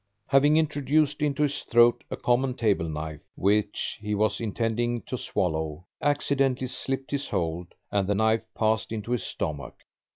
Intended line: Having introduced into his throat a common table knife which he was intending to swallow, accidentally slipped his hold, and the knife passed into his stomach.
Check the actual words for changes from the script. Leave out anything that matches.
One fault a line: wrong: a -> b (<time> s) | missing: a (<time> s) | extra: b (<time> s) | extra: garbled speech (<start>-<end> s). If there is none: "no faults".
no faults